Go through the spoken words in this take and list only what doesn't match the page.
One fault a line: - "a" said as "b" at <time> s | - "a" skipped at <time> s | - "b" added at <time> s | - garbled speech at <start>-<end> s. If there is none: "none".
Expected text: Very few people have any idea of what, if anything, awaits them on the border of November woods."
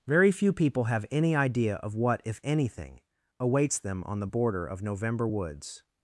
none